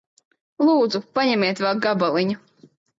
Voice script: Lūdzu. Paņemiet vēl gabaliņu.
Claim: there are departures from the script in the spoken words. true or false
false